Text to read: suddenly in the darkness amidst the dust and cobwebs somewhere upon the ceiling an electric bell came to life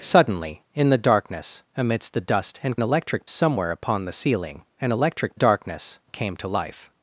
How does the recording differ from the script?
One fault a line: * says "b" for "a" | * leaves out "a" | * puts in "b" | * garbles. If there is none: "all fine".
* says "electric" for "cobwebs"
* says "darkness" for "bell"